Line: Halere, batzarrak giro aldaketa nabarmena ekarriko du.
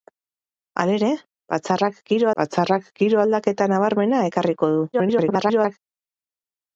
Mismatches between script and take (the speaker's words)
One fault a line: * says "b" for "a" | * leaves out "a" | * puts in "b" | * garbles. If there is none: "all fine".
* puts in "batzarrak giro"
* garbles